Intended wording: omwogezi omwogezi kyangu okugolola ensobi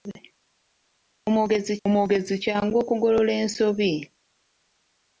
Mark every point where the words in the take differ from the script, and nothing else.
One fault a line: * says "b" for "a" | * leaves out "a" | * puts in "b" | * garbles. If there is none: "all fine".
all fine